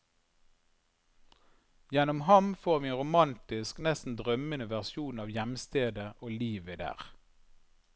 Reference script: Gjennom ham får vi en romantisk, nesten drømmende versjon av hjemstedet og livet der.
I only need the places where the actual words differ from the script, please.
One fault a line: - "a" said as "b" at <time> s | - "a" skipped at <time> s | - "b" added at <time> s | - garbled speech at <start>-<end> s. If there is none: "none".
none